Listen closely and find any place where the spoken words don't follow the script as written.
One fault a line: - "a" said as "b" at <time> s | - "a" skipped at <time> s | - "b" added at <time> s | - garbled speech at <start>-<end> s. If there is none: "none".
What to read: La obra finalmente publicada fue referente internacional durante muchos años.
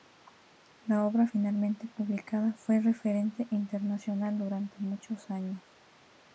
none